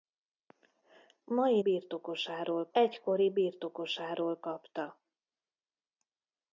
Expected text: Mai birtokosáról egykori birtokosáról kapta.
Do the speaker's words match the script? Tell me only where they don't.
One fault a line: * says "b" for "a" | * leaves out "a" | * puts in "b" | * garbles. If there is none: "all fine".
all fine